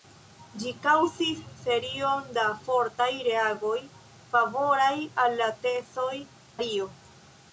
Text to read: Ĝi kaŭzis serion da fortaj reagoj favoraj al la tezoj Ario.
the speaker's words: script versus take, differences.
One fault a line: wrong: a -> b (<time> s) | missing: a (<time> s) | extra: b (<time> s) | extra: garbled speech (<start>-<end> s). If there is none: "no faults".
no faults